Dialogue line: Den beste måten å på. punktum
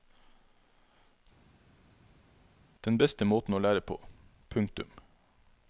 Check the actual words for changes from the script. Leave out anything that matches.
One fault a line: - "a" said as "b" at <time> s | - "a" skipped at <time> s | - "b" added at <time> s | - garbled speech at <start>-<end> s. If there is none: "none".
- "lære" added at 3.6 s